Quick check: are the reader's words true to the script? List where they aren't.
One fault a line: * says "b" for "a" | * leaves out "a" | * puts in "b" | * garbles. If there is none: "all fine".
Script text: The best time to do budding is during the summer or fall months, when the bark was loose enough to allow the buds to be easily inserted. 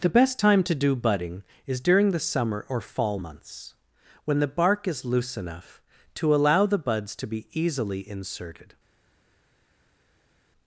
* says "is" for "was"